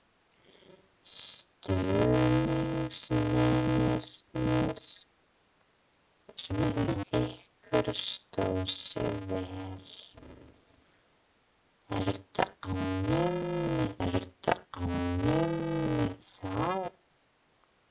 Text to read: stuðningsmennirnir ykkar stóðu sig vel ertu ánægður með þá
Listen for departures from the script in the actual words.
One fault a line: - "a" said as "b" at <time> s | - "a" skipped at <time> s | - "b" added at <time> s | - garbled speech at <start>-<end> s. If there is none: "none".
- garbled speech at 6.4-7.1 s
- "ertu ánægður með" added at 14.1 s